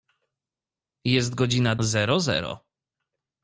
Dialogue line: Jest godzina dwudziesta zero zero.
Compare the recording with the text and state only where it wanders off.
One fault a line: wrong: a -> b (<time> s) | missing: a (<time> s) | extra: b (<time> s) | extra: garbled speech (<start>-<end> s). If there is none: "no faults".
missing: dwudziesta (1.8 s)